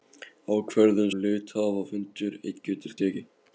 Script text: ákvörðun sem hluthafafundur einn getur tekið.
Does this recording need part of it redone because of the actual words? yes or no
yes